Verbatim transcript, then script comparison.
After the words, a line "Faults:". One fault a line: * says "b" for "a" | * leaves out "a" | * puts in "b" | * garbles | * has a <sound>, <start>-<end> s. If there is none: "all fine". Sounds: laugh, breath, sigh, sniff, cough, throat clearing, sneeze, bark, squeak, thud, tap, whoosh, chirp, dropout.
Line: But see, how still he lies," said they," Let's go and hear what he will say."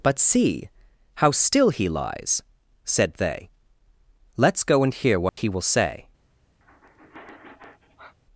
But see, how still he lies," said they," Let's go and hear what he will say."
Faults:
* has a dropout, 5.3-5.4 s
* has a sigh, 6.6-8.1 s